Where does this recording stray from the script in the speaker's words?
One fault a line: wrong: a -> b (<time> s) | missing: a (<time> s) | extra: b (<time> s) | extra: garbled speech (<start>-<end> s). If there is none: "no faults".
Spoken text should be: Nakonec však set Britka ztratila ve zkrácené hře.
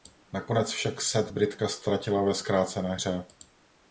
no faults